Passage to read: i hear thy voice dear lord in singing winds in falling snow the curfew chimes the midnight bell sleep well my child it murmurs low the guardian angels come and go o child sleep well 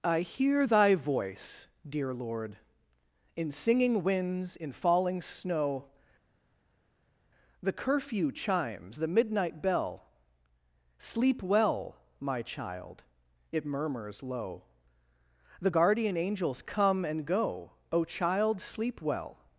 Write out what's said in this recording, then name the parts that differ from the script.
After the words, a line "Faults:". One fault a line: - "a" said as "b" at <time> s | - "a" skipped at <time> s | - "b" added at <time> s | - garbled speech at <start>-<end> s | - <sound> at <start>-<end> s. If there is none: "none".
i hear thy voice dear lord in singing winds in falling snow the curfew chimes the midnight bell sleep well my child it murmurs low the guardian angels come and go o child sleep well
Faults:
none